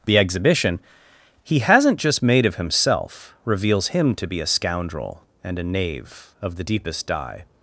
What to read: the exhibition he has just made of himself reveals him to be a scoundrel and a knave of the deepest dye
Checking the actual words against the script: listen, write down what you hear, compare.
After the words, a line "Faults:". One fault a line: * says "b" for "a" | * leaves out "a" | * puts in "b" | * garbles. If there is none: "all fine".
the exhibition he hasn't just made of himself reveals him to be a scoundrel and a knave of the deepest dye
Faults:
* says "hasn't" for "has"